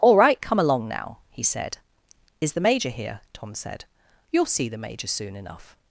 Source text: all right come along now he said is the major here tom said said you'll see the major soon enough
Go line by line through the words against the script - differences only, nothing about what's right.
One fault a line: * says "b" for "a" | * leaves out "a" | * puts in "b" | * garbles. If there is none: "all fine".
* leaves out "said"